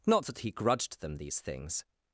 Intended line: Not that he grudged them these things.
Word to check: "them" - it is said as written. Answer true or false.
true